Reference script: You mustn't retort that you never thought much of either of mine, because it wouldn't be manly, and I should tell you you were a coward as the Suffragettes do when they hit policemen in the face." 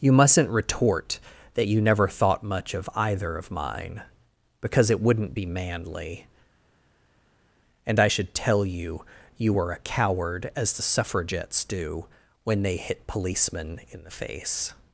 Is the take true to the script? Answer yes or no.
yes